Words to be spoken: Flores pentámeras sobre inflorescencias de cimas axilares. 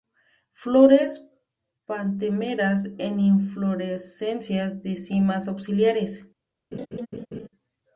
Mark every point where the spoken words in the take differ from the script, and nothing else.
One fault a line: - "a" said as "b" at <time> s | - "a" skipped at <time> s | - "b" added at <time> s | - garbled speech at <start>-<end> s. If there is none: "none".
- "sobre" said as "en" at 3.0 s